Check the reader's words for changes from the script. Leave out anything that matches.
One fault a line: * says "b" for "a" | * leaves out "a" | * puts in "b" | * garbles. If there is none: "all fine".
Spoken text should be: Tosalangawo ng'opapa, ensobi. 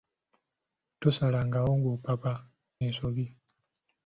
all fine